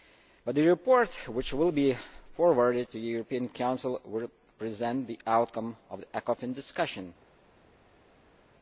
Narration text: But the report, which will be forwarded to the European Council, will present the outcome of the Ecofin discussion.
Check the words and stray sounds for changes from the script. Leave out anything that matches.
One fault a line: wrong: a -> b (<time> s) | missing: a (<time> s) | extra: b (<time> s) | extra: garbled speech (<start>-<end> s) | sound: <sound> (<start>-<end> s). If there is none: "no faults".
no faults